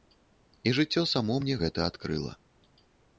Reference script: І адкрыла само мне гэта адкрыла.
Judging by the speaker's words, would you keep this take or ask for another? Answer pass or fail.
fail